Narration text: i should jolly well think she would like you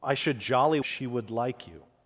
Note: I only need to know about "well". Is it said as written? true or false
false